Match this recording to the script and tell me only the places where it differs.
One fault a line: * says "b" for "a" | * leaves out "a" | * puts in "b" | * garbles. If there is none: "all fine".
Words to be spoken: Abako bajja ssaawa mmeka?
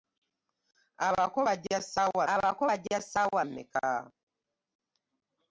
* puts in "abako bajja ssaawa"